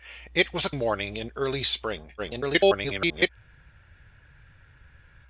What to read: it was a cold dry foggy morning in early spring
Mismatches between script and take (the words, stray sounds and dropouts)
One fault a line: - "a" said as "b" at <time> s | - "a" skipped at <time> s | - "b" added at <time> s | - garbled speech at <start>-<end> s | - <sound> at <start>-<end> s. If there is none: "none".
- "cold dry foggy" skipped at 0.7 s
- garbled speech at 2.2-3.3 s